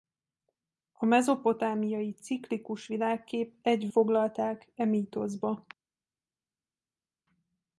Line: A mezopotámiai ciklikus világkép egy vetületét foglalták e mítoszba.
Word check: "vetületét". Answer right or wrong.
wrong